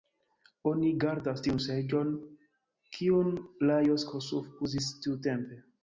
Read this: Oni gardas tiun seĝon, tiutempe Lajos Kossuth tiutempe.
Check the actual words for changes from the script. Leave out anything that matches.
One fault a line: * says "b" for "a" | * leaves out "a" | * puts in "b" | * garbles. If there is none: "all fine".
* says "kiun" for "tiutempe"
* puts in "uzis"